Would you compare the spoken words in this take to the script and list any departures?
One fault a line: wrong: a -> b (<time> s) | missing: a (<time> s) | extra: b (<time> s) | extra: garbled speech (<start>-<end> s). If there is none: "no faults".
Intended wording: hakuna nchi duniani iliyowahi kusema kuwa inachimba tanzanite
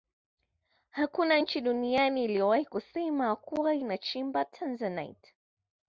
no faults